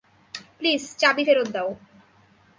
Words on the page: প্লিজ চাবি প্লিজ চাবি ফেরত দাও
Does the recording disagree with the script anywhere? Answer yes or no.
yes